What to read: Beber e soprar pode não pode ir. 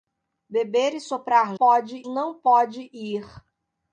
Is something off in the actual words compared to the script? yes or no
no